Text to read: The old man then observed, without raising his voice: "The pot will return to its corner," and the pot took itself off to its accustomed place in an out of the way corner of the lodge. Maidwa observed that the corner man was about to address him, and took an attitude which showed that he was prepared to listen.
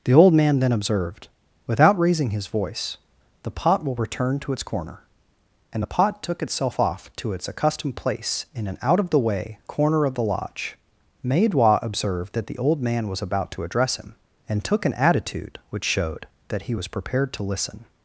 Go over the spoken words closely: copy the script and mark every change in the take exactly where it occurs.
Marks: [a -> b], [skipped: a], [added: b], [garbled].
The old man then observed, without raising his voice: "The pot will return to its corner," and the pot took itself off to its accustomed place in an out of the way corner of the lodge. Maidwa observed that the [corner -> old] man was about to address him, and took an attitude which showed that he was prepared to listen.